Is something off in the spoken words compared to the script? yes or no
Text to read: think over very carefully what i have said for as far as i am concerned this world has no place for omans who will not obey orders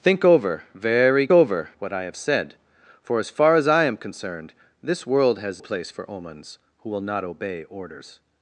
yes